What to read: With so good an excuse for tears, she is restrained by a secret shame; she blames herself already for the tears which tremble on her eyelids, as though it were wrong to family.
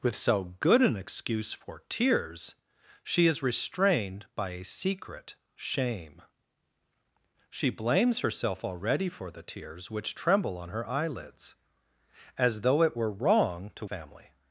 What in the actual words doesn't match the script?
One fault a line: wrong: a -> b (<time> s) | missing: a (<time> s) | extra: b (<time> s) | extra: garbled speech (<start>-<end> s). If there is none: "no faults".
no faults